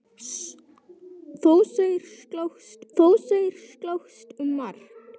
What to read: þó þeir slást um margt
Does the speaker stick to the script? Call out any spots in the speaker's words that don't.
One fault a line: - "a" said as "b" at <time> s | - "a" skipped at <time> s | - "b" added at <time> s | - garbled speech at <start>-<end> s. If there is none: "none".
- "þó þeir slást" added at 3.0 s